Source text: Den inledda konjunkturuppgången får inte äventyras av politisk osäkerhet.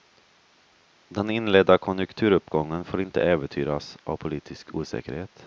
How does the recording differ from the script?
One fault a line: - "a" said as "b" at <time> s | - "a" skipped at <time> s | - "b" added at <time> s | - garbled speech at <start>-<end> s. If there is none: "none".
none